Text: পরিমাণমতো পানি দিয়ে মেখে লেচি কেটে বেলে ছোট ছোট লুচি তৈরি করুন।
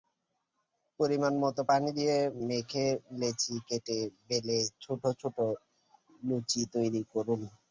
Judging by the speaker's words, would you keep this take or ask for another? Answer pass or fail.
pass